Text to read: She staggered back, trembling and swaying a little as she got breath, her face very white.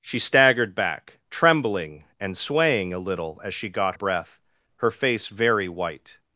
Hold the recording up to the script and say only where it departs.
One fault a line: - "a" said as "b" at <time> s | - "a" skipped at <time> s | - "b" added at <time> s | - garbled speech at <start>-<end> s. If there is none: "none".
none